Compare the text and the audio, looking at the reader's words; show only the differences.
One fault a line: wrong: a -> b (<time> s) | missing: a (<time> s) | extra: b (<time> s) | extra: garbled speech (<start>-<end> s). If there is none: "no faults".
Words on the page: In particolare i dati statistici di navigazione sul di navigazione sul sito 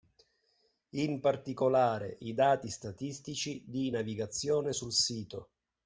missing: di navigazione sul (4.9 s)